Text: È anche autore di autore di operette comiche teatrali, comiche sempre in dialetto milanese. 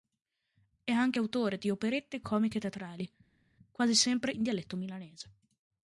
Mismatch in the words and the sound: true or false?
true